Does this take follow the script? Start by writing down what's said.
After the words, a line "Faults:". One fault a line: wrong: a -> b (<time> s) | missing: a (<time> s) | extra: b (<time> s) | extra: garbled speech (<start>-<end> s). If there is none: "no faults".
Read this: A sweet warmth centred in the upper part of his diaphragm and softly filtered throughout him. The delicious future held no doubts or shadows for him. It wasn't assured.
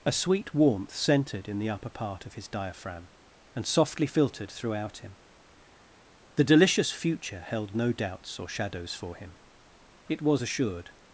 A sweet warmth centred in the upper part of his diaphragm and softly filtered throughout him. The delicious future held no doubts or shadows for him. It was assured.
Faults:
wrong: wasn't -> was (10.2 s)